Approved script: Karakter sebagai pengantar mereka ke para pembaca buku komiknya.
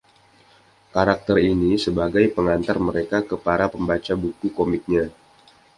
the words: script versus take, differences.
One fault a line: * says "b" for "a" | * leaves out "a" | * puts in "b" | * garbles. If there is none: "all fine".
* puts in "ini"